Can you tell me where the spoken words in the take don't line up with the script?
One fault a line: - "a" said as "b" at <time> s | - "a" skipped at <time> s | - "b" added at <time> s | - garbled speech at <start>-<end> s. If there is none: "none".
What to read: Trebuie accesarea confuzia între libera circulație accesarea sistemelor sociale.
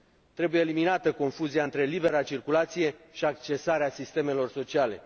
- "accesarea" said as "eliminată" at 0.6 s
- "și" added at 3.1 s